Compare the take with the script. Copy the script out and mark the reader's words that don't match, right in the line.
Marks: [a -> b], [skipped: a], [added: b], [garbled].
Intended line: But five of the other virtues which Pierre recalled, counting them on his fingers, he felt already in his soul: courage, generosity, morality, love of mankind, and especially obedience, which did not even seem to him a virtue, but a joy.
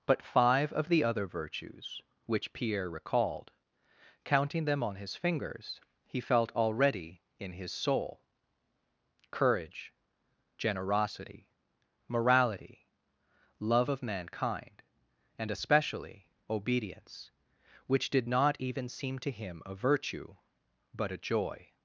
But five of the other virtues which Pierre recalled, counting them on his fingers, he felt already in his soul: courage, generosity, morality, love of mankind, and especially obedience, which did not even seem to him a virtue, but a joy.